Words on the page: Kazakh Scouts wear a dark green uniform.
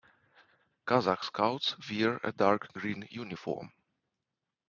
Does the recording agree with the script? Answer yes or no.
yes